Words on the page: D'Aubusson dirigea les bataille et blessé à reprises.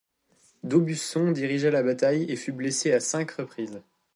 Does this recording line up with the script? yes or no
no